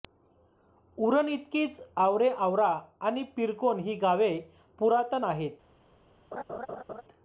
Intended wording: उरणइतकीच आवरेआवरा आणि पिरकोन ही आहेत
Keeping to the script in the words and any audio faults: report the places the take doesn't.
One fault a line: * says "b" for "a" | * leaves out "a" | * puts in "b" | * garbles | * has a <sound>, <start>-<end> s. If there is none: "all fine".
* puts in "गावे पुरातन"
* has a laugh, 6.3-7.0 s